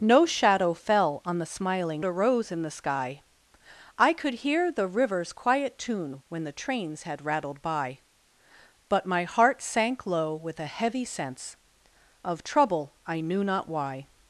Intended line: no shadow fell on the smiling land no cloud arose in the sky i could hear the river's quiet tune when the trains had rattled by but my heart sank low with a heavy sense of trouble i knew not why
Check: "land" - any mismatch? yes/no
yes